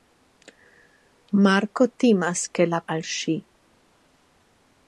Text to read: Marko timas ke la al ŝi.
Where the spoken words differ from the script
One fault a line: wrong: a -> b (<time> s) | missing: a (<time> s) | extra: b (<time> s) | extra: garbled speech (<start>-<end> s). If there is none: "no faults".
no faults